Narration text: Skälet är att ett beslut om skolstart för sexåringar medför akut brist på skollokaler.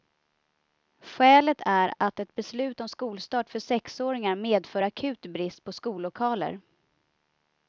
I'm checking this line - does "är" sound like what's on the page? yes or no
yes